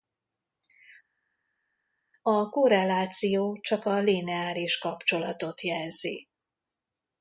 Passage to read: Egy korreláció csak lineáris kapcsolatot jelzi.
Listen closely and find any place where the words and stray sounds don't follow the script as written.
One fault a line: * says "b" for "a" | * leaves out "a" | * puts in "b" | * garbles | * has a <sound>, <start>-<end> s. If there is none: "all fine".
* says "A" for "Egy"
* puts in "a"